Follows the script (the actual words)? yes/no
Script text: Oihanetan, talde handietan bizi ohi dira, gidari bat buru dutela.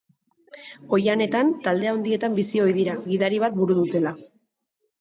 yes